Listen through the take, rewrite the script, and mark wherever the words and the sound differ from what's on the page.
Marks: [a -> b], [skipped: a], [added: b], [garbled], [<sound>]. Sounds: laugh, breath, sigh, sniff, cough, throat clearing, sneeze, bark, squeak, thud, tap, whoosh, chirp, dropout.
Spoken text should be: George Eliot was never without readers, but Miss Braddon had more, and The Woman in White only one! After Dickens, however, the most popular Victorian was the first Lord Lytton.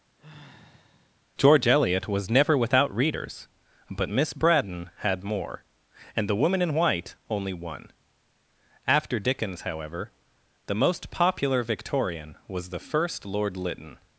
[sigh] George Eliot was never without readers, but Miss Braddon had more, and The Woman in White only one! After Dickens, however, the most popular Victorian was the first Lord Lytton.